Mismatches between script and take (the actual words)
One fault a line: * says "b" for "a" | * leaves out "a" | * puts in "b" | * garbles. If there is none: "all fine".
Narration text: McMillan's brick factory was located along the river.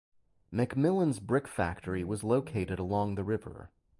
all fine